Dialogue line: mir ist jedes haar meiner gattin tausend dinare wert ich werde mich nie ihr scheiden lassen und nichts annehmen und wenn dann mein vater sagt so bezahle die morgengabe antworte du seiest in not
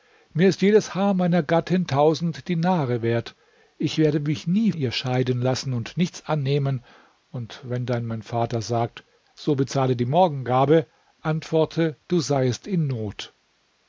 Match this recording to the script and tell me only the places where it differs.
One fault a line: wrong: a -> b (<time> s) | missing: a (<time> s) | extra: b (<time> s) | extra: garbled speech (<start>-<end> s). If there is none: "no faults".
no faults